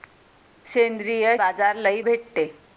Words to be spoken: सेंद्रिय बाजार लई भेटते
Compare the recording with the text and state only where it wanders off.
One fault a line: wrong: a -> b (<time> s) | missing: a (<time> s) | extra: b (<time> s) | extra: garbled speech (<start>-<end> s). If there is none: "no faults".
no faults